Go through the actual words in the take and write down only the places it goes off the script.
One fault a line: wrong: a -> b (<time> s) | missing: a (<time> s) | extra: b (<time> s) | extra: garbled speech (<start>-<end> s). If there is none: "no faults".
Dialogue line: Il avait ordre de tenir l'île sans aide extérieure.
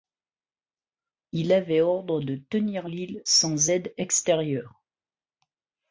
no faults